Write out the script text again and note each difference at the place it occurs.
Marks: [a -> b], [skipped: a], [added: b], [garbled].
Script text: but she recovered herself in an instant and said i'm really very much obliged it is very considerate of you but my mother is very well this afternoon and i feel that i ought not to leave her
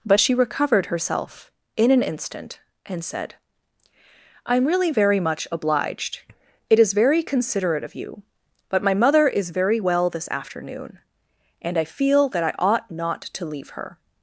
but she recovered herself in an instant and said i'm really very much obliged it is very considerate of you but my mother is very well this afternoon and i feel that i ought not to leave her